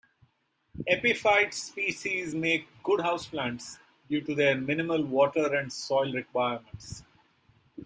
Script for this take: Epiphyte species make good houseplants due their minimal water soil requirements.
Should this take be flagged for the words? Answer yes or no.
yes